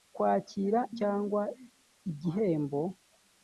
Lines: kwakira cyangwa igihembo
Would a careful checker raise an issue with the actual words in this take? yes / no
no